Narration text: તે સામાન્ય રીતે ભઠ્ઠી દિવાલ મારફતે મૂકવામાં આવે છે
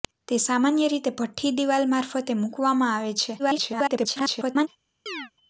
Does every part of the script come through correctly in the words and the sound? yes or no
no